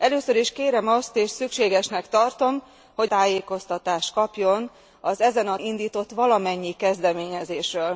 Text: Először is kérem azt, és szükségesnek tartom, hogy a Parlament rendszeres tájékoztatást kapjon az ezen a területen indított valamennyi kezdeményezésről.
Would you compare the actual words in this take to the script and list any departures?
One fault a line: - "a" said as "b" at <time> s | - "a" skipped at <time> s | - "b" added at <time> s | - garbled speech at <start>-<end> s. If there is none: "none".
- "a Parlament rendszeres" skipped at 3.1 s
- "területen" skipped at 5.6 s